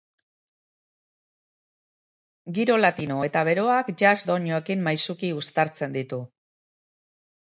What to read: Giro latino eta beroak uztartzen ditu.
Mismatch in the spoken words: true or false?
true